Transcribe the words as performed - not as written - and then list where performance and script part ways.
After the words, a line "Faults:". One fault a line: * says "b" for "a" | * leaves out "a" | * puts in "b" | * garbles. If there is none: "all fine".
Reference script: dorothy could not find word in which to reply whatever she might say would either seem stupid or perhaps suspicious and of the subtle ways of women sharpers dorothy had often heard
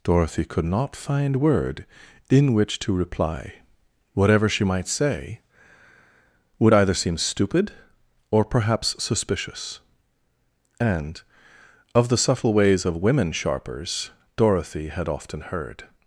dorothy could not find word in which to reply whatever she might say would either seem stupid or perhaps suspicious and of the subtle ways of women sharpers dorothy had often heard
Faults:
all fine